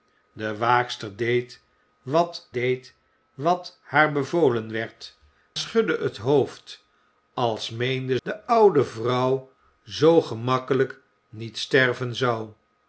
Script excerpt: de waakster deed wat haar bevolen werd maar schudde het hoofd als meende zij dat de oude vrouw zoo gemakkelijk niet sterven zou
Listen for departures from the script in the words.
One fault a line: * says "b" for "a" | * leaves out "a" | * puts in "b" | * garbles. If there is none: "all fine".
* puts in "deed wat"
* leaves out "maar"
* leaves out "zij dat"